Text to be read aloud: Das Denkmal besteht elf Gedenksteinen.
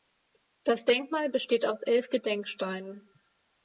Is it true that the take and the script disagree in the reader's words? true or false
true